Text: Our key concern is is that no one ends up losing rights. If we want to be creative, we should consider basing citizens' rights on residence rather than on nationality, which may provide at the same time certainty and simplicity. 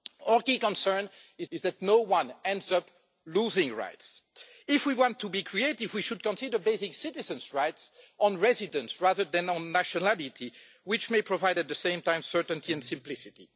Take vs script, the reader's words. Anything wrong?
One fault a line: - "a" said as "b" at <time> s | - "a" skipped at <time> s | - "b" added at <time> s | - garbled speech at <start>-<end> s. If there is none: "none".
none